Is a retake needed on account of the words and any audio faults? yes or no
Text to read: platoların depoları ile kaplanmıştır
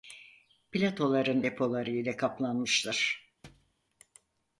yes